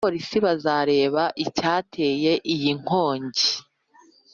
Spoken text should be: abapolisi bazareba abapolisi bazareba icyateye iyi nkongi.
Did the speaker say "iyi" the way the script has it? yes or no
yes